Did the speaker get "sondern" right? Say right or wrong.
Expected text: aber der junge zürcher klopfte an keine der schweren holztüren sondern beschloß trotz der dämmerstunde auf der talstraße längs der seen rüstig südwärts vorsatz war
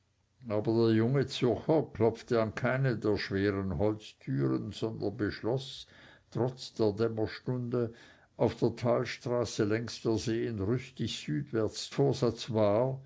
right